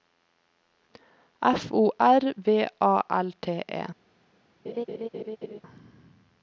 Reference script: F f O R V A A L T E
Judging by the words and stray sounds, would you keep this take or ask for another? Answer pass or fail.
fail